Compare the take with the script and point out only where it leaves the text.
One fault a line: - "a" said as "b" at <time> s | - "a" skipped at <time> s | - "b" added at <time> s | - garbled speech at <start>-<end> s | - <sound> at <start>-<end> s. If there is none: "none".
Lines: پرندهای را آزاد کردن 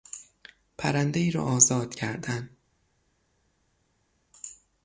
none